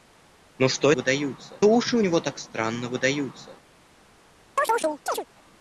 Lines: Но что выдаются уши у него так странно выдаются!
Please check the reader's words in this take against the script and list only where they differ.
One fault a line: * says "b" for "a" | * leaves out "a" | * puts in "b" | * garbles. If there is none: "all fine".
all fine